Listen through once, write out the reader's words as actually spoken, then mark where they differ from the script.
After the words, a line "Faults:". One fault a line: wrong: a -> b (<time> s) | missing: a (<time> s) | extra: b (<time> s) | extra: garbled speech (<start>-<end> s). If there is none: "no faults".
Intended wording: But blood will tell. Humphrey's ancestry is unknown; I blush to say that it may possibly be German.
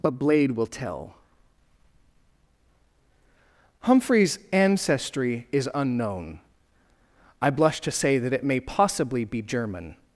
But blade will tell. Humphrey's ancestry is unknown; I blush to say that it may possibly be German.
Faults:
wrong: blood -> blade (0.1 s)